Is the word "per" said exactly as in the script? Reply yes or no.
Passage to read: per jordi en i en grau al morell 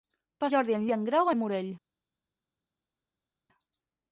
yes